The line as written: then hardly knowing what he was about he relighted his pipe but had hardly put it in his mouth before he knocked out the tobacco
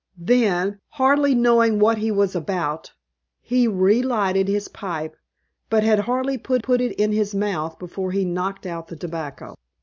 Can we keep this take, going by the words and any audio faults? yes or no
no